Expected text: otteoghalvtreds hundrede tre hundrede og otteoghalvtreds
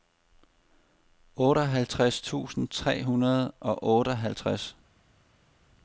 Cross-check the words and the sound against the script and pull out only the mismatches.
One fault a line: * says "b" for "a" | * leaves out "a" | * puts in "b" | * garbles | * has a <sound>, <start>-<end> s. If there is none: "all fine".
* says "tusind" for "hundrede"